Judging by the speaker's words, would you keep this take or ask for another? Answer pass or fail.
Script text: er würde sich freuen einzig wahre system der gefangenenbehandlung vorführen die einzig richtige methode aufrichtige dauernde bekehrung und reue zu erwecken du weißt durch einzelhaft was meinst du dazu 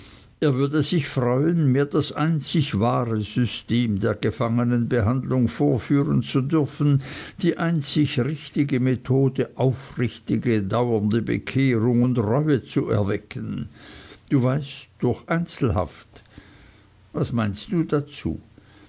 fail